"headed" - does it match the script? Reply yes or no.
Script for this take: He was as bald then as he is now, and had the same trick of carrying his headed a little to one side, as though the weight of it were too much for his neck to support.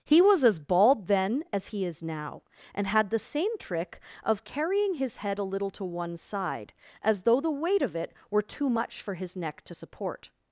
no